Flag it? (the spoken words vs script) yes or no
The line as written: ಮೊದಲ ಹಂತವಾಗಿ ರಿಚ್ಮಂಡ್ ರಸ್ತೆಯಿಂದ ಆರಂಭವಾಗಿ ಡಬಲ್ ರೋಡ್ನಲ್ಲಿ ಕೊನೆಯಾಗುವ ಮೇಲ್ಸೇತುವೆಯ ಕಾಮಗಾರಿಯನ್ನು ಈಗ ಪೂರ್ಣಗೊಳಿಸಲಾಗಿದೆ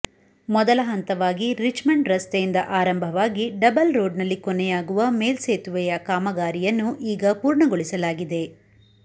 no